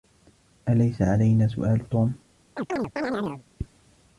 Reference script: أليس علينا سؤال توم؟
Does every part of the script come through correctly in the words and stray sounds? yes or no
no